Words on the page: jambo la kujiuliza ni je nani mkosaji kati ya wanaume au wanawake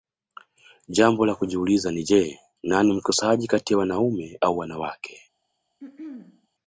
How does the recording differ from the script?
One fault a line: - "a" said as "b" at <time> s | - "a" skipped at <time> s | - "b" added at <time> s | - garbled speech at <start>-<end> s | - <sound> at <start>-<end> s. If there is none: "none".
- throat clearing at 5.8-6.5 s